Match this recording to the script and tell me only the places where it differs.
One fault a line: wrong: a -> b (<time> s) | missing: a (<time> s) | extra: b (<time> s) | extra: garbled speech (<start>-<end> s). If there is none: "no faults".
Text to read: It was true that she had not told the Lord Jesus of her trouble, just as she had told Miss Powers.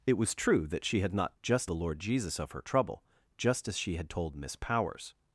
wrong: told -> just (1.4 s)